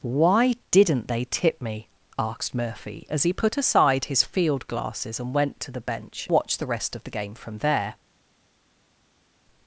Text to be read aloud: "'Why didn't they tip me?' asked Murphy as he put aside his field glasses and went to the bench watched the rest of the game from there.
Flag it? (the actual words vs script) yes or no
no